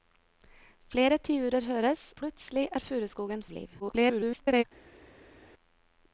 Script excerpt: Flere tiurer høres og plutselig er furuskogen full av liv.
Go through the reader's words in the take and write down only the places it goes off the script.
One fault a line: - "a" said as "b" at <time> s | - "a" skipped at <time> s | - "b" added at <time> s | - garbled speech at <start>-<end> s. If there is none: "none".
- "og" skipped at 2.0 s
- "full" skipped at 3.4 s
- garbled speech at 3.8-4.6 s